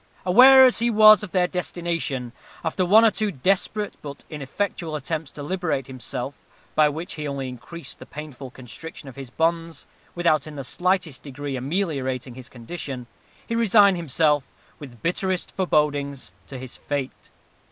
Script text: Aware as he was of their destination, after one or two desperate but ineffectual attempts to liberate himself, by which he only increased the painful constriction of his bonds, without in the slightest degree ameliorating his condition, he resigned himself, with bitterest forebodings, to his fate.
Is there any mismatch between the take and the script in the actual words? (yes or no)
no